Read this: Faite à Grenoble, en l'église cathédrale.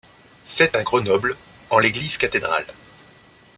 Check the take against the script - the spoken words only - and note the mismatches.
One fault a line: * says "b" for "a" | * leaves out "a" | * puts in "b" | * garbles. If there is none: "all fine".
all fine